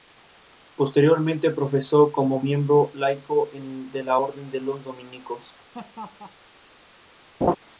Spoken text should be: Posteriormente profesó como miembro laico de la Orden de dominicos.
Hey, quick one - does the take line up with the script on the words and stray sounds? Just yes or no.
no